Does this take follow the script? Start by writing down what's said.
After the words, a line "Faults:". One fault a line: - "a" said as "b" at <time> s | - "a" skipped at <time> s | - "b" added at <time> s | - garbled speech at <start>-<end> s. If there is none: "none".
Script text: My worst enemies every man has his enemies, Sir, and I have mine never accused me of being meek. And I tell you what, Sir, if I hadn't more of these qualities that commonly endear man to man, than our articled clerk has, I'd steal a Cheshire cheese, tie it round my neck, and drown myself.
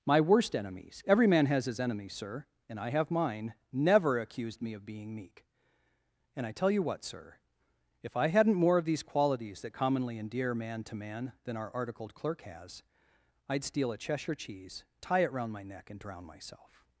My worst enemies every man has his enemies, Sir, and I have mine never accused me of being meek. And I tell you what, Sir, if I hadn't more of these qualities that commonly endear man to man, than our articled clerk has, I'd steal a Cheshire cheese, tie it round my neck, and drown myself.
Faults:
none